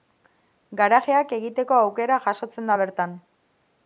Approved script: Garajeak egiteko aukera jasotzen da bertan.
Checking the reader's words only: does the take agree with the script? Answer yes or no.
yes